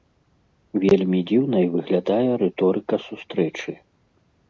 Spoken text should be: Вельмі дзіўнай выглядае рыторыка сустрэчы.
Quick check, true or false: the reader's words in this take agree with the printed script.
true